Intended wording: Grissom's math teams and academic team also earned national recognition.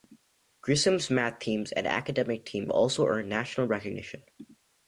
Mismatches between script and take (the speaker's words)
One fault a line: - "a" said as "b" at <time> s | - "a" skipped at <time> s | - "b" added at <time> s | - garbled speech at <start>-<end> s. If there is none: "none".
none